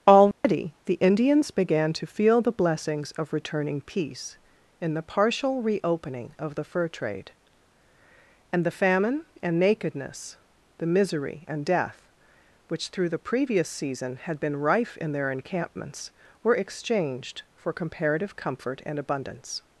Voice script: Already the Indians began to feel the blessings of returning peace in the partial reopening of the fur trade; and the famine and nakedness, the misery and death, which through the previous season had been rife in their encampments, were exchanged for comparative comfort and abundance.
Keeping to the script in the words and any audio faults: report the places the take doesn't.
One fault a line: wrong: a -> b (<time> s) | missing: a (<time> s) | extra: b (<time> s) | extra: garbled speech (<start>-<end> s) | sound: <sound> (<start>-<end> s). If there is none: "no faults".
sound: dropout (0.3-0.4 s)